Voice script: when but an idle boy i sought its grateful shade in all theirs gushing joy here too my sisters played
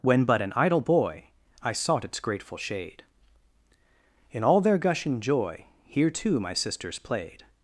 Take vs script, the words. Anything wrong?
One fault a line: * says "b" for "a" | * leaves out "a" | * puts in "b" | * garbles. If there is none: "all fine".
* says "their" for "theirs"